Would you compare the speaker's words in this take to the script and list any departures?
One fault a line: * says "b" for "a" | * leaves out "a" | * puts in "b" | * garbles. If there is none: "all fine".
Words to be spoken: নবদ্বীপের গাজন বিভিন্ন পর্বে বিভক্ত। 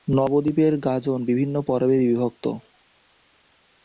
all fine